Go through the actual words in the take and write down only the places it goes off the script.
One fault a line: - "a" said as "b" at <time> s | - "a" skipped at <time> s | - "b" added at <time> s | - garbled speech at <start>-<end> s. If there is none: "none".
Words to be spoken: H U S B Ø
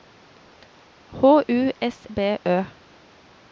none